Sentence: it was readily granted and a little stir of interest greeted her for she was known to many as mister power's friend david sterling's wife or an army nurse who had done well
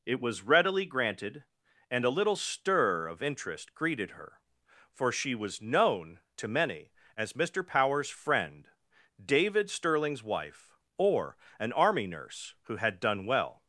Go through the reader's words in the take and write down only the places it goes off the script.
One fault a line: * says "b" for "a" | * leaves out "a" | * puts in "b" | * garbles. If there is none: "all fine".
all fine